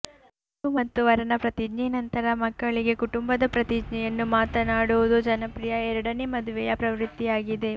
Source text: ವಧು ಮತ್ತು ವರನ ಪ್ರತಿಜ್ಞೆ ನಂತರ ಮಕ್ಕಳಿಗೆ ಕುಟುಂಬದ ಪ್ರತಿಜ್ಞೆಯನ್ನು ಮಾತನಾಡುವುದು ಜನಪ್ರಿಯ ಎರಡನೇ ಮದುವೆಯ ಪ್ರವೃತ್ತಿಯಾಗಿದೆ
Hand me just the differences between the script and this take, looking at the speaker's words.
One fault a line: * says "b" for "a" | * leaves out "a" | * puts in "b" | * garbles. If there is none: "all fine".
all fine